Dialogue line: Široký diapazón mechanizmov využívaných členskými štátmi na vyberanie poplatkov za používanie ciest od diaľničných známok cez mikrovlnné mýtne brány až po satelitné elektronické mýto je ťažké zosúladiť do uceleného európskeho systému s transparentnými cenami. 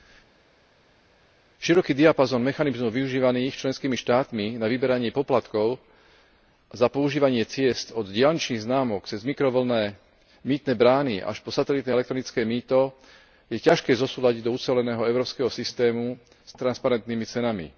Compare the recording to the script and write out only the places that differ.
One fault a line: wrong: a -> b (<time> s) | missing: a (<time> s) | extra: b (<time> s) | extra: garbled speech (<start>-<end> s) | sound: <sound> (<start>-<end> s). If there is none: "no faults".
no faults